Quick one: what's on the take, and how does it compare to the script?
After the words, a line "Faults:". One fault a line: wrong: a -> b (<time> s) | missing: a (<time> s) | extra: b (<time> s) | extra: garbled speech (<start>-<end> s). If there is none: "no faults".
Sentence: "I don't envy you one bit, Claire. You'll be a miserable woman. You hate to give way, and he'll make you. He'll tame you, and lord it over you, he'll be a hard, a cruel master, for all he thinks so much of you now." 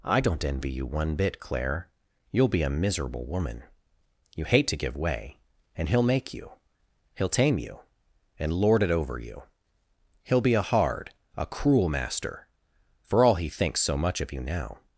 "I don't envy you one bit, Claire. You'll be a miserable woman. You hate to give way, and he'll make you. He'll tame you, and lord it over you, he'll be a hard, a cruel master, for all he thinks so much of you now."
Faults:
no faults